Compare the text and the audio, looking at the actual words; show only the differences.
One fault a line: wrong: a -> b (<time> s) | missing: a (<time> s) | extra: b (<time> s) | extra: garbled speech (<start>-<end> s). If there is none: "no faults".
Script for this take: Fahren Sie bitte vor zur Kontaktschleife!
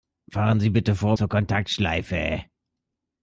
no faults